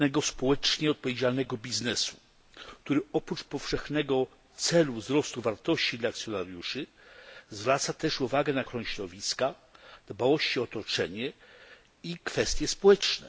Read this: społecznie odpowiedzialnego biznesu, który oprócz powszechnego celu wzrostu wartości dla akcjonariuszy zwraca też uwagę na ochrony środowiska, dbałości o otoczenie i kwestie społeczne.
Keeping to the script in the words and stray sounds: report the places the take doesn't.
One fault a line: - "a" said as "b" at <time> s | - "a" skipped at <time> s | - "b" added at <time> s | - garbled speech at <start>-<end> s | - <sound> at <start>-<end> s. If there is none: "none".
none